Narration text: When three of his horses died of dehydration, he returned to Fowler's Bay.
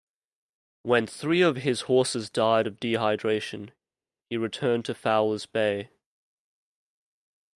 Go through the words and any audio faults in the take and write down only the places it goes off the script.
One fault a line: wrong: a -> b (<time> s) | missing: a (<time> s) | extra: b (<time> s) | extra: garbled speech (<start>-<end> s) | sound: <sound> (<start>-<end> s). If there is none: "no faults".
no faults